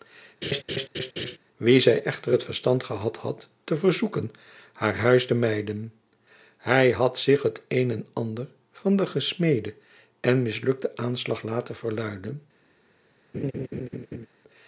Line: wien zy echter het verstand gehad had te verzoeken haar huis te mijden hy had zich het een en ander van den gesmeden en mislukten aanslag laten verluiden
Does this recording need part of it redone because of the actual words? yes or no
no